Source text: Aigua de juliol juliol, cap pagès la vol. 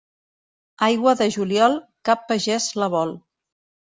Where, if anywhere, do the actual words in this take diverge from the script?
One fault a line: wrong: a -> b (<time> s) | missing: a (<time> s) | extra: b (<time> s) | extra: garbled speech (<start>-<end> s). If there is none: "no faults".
missing: juliol (1.8 s)